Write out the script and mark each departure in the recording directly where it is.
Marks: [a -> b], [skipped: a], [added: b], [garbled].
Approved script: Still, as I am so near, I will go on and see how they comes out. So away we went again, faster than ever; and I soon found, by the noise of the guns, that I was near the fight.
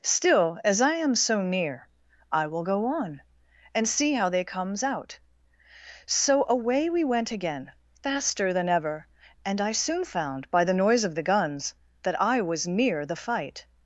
Still, as I am so near, I will go on and see how they comes out. So away we went again, faster than ever; and I soon found, by the noise of the guns, that I was near the fight.